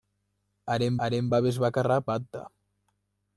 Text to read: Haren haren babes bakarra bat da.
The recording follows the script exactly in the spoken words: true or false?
true